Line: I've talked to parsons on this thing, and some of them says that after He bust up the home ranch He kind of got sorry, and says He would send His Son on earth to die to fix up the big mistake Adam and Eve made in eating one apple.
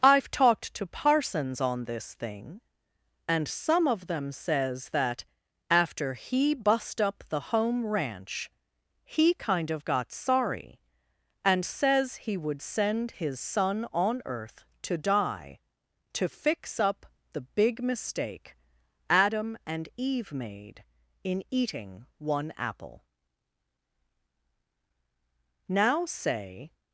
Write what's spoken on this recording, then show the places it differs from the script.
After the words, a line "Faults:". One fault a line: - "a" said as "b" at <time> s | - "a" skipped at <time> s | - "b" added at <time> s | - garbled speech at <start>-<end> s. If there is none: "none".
I've talked to parsons on this thing, and some of them says that after He bust up the home ranch He kind of got sorry, and says He would send His Son on earth to die to fix up the big mistake Adam and Eve made in eating one apple. Now, say
Faults:
- "Now say" added at 25.7 s